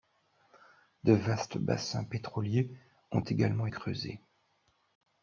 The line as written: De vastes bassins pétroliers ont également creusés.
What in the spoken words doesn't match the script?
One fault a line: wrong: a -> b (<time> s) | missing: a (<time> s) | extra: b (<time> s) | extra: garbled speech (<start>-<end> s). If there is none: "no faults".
no faults